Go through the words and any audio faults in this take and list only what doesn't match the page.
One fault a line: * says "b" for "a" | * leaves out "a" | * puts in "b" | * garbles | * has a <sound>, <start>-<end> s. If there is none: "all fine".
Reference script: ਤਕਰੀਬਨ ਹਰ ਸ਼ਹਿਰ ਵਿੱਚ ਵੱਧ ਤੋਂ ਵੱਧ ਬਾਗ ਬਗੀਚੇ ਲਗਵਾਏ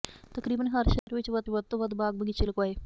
* has a dropout, 1.0-1.1 s
* puts in "ਵੱਧ"